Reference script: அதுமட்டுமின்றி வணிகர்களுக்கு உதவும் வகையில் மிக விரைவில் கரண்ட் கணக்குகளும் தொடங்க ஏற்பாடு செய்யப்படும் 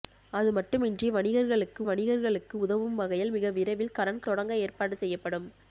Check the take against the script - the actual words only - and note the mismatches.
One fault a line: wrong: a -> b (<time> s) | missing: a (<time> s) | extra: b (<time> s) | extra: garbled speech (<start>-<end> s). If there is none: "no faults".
extra: வணிகர்களுக்கு (1.9 s)
missing: கணக்குகளும் (4.2 s)